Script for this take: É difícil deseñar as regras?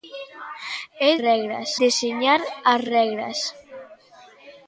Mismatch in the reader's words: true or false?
true